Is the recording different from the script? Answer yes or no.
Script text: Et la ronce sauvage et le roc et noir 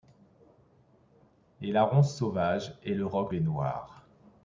no